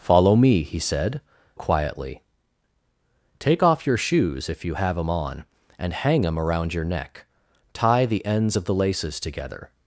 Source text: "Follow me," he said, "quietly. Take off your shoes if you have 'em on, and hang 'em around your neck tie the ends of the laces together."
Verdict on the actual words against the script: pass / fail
pass